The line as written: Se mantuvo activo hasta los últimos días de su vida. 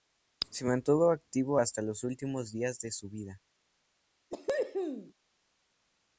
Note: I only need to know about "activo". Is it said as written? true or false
true